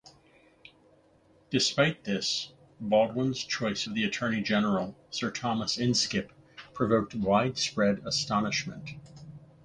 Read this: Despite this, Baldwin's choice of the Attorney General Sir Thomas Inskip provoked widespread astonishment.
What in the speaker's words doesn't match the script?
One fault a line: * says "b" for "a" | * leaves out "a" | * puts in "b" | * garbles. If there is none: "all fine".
all fine